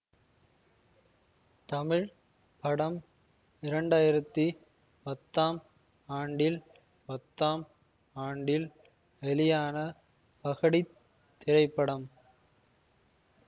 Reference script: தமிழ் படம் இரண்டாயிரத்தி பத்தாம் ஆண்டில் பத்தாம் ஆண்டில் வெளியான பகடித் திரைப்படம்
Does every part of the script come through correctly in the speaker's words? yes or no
yes